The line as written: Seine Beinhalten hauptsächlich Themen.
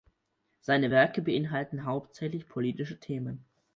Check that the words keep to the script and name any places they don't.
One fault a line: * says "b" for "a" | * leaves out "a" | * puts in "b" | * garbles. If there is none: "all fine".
* puts in "Werke"
* puts in "politische"